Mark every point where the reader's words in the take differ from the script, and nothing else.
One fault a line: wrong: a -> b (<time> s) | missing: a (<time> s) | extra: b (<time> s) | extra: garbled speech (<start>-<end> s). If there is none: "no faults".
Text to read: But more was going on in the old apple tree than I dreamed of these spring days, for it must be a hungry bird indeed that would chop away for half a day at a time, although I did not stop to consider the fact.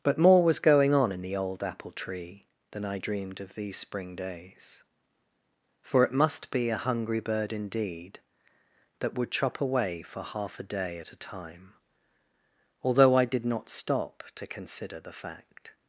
no faults